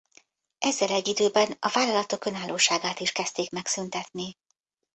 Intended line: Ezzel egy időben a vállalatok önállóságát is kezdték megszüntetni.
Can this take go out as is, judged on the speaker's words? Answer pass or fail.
pass